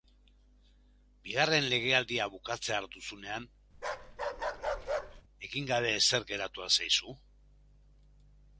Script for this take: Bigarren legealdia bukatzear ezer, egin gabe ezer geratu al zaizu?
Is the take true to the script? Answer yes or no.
no